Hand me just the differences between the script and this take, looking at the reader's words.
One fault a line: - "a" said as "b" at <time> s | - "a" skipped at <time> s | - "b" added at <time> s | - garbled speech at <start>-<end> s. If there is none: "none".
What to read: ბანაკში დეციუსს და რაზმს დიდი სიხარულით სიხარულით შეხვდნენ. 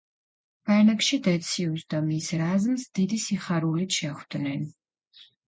- "მის" added at 2.1 s
- "სიხარულით" skipped at 4.0 s